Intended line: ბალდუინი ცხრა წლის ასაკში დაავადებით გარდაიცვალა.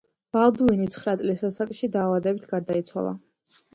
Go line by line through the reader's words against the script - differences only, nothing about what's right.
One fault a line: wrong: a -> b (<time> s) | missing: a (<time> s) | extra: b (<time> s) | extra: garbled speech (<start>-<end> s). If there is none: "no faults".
no faults